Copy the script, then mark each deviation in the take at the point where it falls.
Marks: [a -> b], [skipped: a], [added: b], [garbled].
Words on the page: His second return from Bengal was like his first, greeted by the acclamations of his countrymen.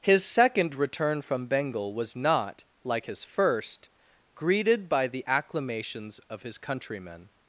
His second return from Bengal was [added: not] like his first, greeted by the acclamations of his countrymen.